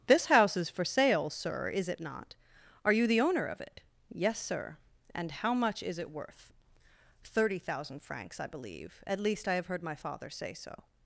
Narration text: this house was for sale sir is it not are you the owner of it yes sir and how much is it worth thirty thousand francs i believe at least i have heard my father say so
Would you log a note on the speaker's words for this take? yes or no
yes